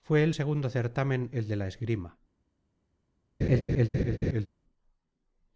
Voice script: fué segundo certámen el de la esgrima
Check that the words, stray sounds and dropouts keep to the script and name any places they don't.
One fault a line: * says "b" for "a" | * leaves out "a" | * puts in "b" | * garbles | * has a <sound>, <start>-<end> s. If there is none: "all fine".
* puts in "el"
* has a laugh, 3.4-4.5 s